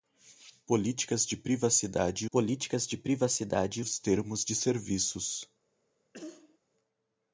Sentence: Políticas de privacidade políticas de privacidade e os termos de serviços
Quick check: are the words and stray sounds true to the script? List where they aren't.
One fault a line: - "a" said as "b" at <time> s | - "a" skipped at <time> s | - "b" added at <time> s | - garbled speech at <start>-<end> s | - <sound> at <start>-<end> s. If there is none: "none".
- cough at 6.1-6.6 s